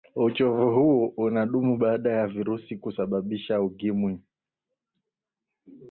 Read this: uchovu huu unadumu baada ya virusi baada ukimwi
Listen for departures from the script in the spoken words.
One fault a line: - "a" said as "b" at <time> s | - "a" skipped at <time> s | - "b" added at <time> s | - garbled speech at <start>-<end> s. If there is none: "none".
- "baada" said as "kusababisha" at 2.8 s